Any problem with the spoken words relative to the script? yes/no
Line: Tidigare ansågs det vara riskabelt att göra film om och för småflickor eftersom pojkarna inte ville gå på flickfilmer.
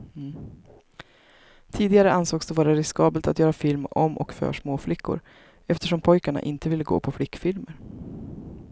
no